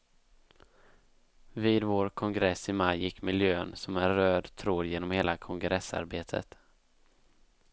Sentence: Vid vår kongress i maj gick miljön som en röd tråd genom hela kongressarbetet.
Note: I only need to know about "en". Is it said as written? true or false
true